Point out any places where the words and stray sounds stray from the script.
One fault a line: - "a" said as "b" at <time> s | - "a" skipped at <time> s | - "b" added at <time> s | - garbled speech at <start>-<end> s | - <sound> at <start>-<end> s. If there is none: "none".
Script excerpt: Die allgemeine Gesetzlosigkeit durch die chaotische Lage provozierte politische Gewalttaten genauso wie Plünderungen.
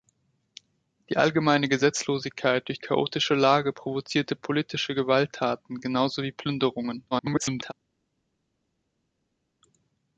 - "die" skipped at 2.8 s
- garbled speech at 7.1-7.7 s